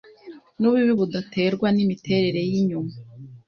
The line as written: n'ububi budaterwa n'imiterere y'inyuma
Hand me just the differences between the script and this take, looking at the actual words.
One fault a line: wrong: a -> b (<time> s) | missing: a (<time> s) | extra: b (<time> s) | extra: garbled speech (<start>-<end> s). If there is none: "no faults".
no faults